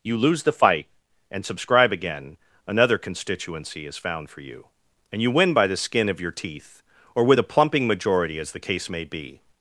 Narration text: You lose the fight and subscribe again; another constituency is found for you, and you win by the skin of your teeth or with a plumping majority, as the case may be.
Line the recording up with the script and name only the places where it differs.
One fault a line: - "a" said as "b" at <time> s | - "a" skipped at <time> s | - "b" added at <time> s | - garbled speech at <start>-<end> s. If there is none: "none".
none